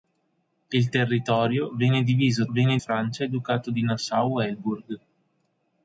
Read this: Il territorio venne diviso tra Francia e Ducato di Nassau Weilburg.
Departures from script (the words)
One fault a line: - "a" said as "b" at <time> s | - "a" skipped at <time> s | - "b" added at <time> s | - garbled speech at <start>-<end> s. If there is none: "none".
- "tra" said as "venne" at 2.5 s